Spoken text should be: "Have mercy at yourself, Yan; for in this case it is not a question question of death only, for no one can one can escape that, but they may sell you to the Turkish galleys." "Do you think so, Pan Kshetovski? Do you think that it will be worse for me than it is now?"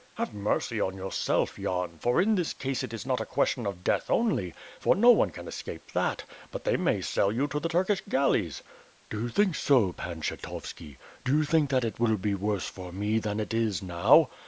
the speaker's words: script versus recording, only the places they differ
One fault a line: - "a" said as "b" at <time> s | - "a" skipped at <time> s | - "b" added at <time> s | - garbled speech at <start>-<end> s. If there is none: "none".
- "at" said as "on" at 0.8 s
- "question" skipped at 3.7 s
- "one can" skipped at 5.5 s